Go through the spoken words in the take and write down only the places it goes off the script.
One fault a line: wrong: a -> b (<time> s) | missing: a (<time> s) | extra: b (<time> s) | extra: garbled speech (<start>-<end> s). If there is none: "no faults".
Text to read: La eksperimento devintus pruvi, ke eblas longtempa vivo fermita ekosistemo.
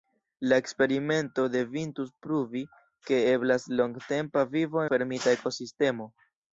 no faults